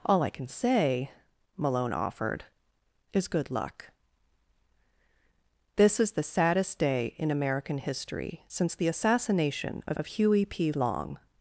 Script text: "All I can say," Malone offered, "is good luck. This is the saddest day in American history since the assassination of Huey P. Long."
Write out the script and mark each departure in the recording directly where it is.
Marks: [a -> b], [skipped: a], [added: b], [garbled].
"All I can say," Malone offered, "is good luck. This is the saddest day in American history since the assassination of [added: of] Huey P. Long."